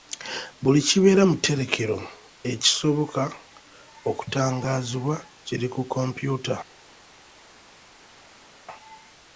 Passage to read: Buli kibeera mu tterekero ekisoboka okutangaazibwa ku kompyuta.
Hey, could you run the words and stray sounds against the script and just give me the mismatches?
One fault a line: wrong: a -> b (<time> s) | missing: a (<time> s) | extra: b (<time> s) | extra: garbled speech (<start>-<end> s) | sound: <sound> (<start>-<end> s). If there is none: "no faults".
extra: kiri (5.5 s)